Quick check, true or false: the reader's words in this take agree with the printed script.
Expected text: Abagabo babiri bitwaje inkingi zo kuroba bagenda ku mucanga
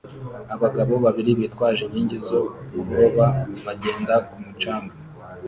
true